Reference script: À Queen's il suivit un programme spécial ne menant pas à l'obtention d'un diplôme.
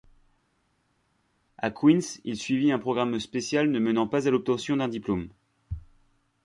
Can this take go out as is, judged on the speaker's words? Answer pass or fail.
pass